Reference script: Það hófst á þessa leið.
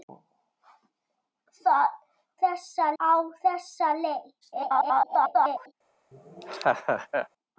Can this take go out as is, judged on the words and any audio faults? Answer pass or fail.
fail